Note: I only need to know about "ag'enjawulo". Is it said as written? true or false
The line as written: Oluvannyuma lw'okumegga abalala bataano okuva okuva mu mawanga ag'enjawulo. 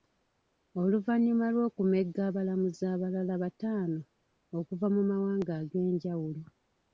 true